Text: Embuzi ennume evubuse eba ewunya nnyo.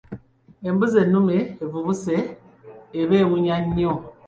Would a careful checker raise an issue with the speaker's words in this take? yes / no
no